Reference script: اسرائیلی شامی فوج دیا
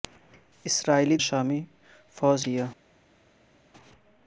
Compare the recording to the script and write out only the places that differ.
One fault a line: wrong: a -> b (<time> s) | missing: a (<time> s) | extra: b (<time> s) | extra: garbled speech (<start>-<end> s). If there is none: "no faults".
no faults